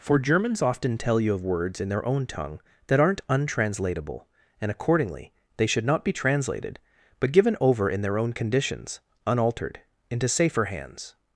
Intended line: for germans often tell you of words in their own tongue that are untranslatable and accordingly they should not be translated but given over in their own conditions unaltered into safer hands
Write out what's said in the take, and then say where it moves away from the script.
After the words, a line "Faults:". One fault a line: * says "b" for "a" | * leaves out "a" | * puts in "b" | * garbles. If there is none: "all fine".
for germans often tell you of words in their own tongue that aren't untranslatable and accordingly they should not be translated but given over in their own conditions unaltered into safer hands
Faults:
* says "aren't" for "are"